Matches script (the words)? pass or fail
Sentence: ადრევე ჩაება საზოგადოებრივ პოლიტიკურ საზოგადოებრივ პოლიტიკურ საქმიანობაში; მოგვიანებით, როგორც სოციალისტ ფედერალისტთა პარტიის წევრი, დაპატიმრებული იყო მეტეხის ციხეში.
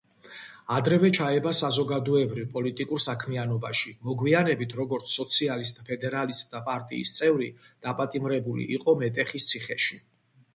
fail